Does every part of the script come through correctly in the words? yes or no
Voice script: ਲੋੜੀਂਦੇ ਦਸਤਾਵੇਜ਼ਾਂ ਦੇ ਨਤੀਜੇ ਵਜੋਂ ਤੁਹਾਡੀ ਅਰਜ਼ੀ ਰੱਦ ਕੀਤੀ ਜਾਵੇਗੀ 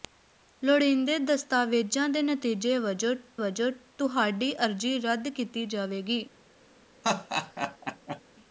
no